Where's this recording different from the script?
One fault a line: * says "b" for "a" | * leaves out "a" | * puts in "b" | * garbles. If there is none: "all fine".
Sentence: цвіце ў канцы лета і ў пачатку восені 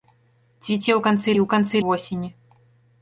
* leaves out "лета"
* says "канцы" for "пачатку"